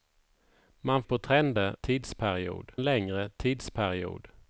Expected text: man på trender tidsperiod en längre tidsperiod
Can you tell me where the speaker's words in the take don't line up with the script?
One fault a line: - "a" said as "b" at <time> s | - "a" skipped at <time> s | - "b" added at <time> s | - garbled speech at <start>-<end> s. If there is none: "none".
none